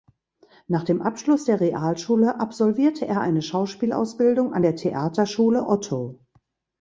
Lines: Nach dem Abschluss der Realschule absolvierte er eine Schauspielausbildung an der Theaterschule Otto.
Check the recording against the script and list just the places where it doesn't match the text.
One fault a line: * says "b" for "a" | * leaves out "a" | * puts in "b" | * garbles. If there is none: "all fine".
all fine